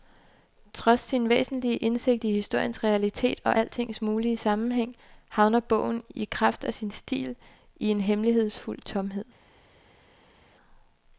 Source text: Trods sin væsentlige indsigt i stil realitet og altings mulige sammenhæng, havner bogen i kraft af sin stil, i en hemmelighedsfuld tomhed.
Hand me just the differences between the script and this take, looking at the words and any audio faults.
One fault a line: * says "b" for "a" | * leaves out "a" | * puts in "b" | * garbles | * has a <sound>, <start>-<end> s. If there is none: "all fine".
* says "historiens" for "stil"